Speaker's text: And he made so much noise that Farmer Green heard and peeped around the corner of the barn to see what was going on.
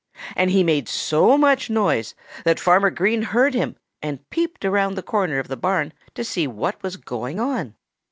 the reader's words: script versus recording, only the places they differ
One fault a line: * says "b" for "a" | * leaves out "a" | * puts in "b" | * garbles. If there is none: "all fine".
* puts in "him"